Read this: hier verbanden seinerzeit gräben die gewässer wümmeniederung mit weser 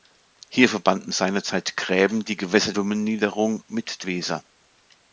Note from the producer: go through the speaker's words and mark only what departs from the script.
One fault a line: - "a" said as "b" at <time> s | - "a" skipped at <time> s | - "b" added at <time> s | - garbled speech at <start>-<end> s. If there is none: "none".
none